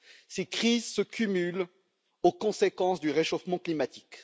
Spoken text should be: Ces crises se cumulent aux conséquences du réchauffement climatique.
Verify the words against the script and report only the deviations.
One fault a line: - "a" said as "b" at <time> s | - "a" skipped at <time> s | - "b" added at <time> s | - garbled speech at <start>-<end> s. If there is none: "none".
none